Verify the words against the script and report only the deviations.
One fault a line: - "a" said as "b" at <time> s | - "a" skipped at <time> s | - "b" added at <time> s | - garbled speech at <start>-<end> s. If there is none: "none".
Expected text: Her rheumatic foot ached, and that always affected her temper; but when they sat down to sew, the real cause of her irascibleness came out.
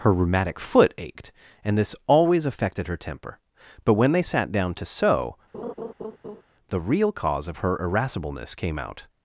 - "that" said as "this" at 1.8 s